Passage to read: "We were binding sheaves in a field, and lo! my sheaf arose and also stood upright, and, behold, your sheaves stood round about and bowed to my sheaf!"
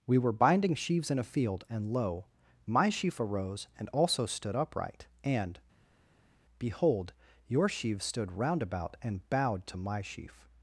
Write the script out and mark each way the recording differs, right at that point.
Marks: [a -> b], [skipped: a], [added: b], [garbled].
"We were binding sheaves in a field, and lo! my sheaf arose and also stood upright, and, behold, your sheaves stood round about and bowed to my sheaf!"